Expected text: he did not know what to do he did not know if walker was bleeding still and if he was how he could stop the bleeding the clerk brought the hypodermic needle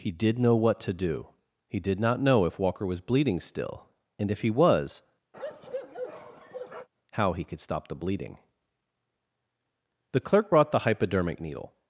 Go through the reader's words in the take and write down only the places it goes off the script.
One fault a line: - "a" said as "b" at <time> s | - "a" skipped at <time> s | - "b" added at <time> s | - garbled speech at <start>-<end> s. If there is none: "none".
- "not" skipped at 0.4 s